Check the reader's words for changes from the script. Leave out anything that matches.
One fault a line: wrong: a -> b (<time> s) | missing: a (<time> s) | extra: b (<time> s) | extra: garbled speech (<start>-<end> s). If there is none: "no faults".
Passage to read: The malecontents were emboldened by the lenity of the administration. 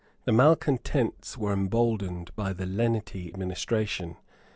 missing: of the (3.3 s)